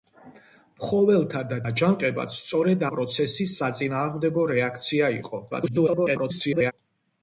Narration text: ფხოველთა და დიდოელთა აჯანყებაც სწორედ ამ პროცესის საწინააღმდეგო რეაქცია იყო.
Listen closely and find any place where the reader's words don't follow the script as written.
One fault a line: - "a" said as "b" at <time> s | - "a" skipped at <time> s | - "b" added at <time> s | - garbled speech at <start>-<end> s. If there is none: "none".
- "დიდოელთა" skipped at 1.6 s
- "ამ" skipped at 2.9 s
- garbled speech at 5.5-6.7 s